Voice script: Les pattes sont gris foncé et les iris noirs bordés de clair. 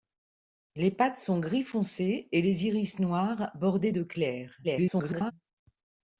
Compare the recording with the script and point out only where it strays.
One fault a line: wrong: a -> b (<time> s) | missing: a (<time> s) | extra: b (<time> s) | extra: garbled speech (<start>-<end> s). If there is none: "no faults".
extra: garbled speech (4.6-5.3 s)